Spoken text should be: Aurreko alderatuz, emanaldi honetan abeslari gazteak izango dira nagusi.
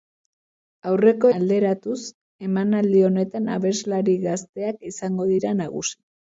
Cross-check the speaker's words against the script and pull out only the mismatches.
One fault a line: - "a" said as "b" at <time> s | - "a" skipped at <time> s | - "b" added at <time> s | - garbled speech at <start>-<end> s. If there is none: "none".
none